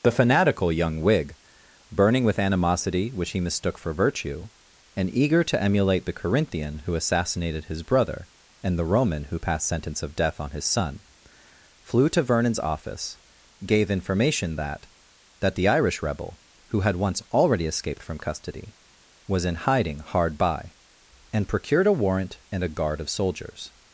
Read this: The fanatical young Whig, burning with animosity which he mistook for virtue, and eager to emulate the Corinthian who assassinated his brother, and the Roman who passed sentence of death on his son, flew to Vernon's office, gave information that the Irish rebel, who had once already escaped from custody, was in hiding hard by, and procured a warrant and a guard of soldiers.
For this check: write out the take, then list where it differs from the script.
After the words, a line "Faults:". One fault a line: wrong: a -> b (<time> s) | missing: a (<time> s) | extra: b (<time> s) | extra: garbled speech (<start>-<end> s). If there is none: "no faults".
The fanatical young Whig, burning with animosity which he mistook for virtue, and eager to emulate the Corinthian who assassinated his brother, and the Roman who passed sentence of death on his son, flew to Vernon's office, gave information that that the Irish rebel, who had once already escaped from custody, was in hiding hard by, and procured a warrant and a guard of soldiers.
Faults:
extra: that (15.4 s)